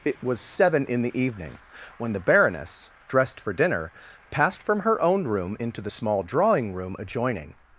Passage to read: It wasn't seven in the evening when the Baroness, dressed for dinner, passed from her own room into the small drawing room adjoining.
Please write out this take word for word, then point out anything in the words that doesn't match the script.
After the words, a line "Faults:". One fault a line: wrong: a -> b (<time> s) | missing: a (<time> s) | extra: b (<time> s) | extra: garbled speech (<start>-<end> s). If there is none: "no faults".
It was seven in the evening when the Baroness, dressed for dinner, passed from her own room into the small drawing room adjoining.
Faults:
wrong: wasn't -> was (0.2 s)